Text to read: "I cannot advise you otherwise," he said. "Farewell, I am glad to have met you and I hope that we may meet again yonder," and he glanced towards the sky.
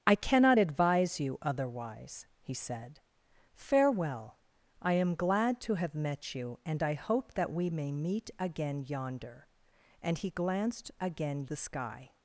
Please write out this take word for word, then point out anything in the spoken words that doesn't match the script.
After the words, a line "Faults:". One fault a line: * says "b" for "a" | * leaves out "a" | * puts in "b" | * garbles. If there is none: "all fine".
"I cannot advise you otherwise," he said. "Farewell, I am glad to have met you and I hope that we may meet again yonder," and he glanced again the sky.
Faults:
* says "again" for "towards"